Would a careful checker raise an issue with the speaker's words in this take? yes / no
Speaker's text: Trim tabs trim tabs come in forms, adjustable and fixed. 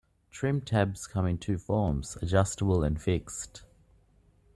yes